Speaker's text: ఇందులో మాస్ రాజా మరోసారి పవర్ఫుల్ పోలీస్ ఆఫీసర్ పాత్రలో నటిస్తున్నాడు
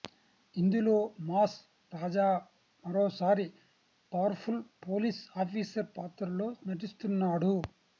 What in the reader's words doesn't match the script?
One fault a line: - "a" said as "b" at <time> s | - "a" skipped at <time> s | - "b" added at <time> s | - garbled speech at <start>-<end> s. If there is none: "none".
none